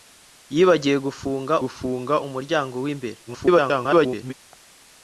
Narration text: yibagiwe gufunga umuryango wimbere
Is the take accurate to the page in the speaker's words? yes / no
no